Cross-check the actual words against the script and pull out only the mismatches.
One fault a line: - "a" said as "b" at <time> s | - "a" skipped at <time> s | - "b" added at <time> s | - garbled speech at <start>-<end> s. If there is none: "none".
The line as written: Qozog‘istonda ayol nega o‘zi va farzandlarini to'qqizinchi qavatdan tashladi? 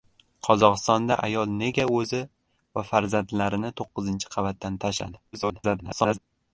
- garbled speech at 5.3-6.2 s